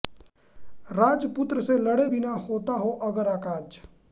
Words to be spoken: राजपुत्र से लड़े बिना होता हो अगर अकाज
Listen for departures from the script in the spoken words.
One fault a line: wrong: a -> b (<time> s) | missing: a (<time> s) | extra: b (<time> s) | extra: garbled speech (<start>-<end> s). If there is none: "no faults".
no faults